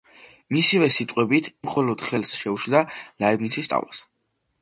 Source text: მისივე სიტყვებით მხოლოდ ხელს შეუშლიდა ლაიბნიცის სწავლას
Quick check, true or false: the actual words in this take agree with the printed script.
true